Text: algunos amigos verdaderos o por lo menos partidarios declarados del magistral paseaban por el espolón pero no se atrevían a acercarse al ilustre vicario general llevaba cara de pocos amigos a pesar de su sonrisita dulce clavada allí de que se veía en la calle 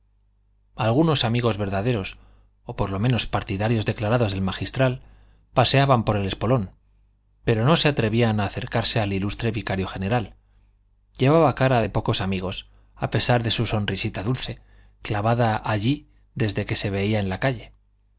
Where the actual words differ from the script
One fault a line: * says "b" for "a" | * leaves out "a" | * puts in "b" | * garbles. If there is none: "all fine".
* says "desde" for "de"